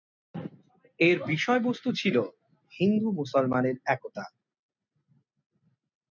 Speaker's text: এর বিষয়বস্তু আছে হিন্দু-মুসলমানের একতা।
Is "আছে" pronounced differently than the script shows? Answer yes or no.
yes